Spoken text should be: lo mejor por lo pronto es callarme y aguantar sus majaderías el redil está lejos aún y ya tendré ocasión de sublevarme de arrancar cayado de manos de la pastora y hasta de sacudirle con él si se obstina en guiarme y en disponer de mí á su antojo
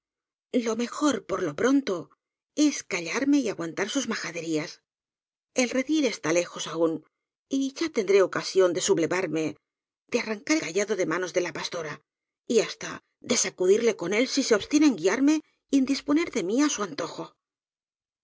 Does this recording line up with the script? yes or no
yes